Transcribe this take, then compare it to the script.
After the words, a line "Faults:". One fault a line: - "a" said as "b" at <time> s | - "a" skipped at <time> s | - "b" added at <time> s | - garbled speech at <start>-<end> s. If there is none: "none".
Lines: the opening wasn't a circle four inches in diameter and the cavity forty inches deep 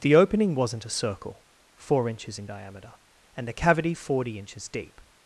the opening wasn't a circle four inches in diameter and the cavity forty inches deep
Faults:
none